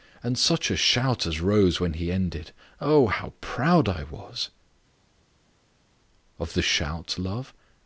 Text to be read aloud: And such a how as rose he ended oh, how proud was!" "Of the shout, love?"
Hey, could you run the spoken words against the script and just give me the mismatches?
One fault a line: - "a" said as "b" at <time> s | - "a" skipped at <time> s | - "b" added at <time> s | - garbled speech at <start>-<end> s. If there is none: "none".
- "how" said as "shout" at 0.8 s
- "when" added at 1.8 s
- "I" added at 3.9 s